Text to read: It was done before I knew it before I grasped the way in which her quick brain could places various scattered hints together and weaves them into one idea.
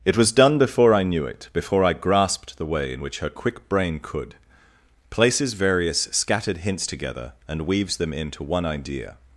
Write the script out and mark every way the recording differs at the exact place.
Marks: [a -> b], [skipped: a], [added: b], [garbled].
It was done before I knew it before I grasped the way in which her quick brain could places various scattered hints together and weaves them into one idea.